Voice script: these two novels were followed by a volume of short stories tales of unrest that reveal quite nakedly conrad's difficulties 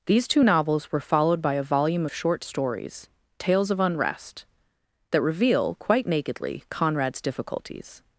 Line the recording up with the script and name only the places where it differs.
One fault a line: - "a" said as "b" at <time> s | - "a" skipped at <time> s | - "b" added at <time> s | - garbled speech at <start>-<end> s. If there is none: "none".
none